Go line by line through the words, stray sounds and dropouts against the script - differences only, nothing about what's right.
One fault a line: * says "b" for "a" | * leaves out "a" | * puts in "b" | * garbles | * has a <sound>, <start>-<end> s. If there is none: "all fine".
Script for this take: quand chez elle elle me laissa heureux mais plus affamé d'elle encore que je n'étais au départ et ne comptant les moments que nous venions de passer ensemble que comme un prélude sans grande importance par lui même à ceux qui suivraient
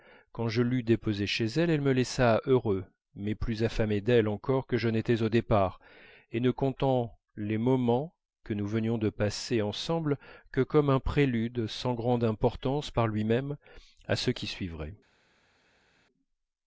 * puts in "je l'eus déposée"